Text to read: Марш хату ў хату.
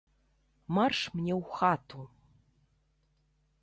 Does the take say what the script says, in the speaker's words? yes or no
no